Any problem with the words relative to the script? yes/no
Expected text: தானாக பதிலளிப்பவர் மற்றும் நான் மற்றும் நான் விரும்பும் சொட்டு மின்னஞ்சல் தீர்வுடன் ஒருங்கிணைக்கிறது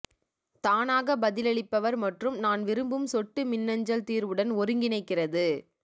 yes